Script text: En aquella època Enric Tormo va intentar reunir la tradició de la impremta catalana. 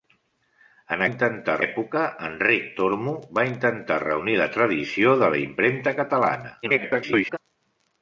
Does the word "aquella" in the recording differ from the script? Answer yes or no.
yes